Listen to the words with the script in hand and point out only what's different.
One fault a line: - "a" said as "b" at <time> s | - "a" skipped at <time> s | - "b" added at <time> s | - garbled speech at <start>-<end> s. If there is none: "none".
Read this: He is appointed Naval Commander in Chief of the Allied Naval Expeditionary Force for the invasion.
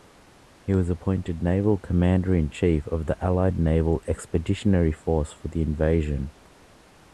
- "is" said as "was" at 0.7 s